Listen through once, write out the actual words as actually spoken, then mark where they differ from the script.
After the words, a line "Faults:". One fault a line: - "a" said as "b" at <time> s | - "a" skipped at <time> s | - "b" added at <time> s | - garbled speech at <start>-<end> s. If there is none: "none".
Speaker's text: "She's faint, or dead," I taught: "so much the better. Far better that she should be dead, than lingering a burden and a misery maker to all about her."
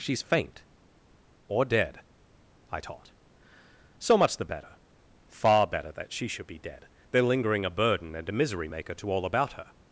"She's faint, or dead," I taught: "so much the better. Far better that she should be dead, than lingering a burden and a misery maker to all about her."
Faults:
none